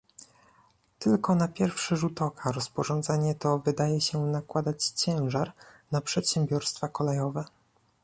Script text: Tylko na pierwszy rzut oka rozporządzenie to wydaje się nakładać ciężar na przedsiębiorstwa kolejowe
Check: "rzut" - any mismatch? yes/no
no